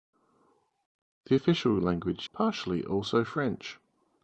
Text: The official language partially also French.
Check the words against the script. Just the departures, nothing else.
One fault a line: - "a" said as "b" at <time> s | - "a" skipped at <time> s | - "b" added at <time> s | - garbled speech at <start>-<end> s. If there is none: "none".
none